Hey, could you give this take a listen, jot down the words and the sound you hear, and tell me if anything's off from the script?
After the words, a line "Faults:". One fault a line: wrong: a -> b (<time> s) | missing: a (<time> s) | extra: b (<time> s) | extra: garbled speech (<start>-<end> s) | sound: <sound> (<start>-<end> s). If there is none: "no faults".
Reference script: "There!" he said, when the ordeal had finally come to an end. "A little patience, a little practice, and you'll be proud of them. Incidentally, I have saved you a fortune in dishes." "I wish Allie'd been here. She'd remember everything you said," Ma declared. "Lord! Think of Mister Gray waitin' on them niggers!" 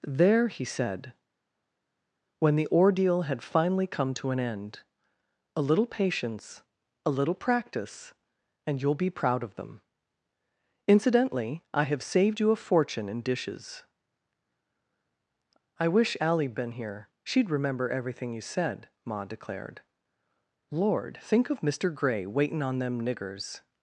"There!" he said, when the ordeal had finally come to an end. "A little patience, a little practice, and you'll be proud of them. Incidentally, I have saved you a fortune in dishes." "I wish Allie'd been here. She'd remember everything you said," Ma declared. "Lord! Think of Mister Gray waitin' on them niggers!"
Faults:
no faults